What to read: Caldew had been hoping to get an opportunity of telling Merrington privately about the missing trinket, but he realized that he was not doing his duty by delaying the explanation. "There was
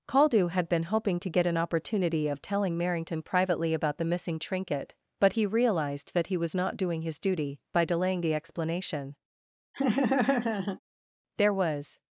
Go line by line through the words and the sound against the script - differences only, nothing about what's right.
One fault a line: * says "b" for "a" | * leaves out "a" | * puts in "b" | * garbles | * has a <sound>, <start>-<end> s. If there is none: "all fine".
* has a laugh, 9.7-10.8 s